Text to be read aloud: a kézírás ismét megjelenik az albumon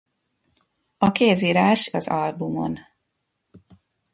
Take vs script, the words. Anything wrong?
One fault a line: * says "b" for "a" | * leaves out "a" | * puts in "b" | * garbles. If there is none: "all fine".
* leaves out "ismét megjelenik"